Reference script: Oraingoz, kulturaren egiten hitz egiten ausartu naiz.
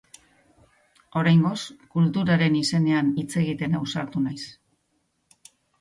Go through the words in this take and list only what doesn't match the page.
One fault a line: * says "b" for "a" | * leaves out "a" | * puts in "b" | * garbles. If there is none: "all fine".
* says "izenean" for "egiten"